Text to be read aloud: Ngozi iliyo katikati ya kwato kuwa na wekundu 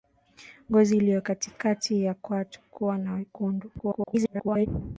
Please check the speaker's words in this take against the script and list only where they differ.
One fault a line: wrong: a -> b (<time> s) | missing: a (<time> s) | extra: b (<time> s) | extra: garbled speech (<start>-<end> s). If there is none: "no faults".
extra: garbled speech (3.8-4.7 s)